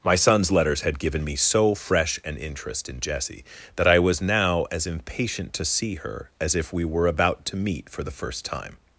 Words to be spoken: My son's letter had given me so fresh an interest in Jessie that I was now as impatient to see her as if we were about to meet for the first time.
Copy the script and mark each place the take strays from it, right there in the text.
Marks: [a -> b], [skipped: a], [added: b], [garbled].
My son's [letter -> letters] had given me so fresh an interest in Jessie that I was now as impatient to see her as if we were about to meet for the first time.